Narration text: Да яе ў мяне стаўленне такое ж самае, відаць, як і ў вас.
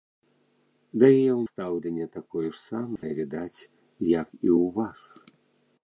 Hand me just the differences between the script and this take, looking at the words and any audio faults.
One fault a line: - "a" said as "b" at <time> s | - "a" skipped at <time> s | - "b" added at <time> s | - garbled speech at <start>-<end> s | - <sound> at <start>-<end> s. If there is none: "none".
- "мяне" skipped at 1.4 s
- dropout at 3.0-3.0 s